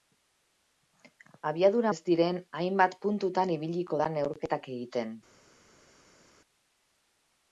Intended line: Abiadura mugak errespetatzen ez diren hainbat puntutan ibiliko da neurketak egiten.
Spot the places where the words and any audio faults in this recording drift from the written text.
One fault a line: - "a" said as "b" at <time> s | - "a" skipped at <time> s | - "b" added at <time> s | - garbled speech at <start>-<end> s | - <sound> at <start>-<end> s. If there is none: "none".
- "mugak errespetatzen" skipped at 1.9 s